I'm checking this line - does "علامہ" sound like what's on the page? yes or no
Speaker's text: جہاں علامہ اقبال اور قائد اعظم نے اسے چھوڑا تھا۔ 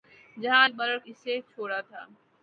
no